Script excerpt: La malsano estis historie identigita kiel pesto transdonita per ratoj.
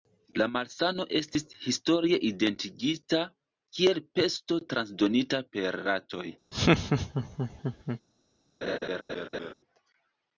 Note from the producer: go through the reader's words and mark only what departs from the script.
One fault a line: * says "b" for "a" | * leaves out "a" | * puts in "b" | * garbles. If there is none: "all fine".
all fine